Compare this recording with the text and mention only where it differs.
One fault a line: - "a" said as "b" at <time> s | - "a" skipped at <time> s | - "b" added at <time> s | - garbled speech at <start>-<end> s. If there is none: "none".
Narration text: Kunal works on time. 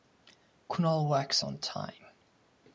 none